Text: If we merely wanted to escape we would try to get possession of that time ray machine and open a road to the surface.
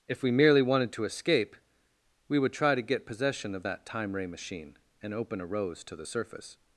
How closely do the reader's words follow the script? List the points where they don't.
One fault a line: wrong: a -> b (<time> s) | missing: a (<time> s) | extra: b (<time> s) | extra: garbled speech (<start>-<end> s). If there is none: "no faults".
wrong: road -> rose (5.5 s)